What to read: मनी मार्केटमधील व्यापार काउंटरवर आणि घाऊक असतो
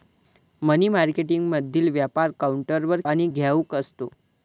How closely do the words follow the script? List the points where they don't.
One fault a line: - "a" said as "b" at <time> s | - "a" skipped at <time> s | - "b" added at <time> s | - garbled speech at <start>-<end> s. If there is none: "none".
none